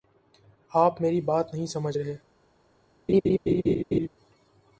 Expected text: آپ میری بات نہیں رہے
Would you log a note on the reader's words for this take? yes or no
yes